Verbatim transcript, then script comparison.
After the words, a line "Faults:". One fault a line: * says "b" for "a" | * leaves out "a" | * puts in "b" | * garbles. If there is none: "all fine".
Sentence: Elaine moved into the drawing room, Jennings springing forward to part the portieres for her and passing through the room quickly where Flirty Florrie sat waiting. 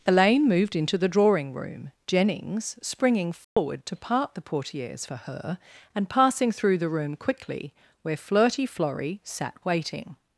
Elaine moved into the drawing room, Jennings springing forward to part the portieres for her and passing through the room quickly where Flirty Florrie sat waiting.
Faults:
all fine